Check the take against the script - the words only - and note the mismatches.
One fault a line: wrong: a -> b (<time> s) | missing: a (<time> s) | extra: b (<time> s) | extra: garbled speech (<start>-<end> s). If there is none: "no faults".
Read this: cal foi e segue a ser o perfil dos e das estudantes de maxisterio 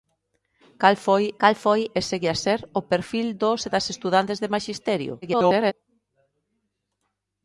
extra: cal foi (1.4 s)
extra: garbled speech (5.2-5.7 s)